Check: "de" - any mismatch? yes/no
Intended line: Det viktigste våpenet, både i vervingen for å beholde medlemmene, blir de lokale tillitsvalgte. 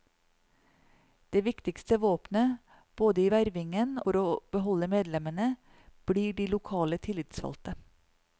no